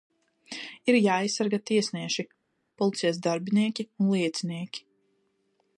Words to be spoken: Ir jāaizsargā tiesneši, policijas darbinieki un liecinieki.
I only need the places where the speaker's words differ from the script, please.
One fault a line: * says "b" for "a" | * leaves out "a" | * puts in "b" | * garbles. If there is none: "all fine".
all fine